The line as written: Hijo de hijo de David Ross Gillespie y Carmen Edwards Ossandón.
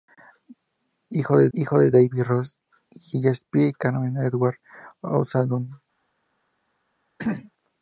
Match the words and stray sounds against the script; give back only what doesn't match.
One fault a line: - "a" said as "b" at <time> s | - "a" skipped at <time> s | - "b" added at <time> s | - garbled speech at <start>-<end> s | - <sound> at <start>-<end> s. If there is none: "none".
- throat clearing at 7.2-7.5 s